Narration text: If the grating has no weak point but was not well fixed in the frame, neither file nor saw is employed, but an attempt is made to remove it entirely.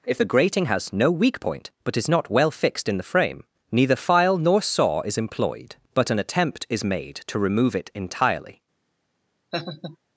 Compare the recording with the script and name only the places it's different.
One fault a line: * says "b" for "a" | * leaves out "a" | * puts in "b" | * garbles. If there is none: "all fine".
* says "is" for "was"